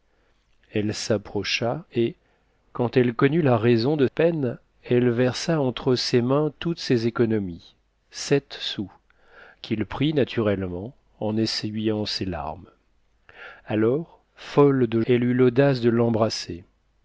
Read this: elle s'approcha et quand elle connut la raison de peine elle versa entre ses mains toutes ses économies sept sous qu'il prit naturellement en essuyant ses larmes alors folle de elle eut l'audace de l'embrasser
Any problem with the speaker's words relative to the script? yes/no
no